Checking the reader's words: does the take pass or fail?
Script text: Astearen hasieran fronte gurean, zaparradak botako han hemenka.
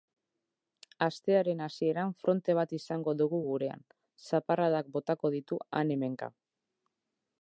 fail